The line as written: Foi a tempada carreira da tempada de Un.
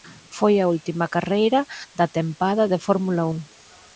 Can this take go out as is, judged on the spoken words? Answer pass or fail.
fail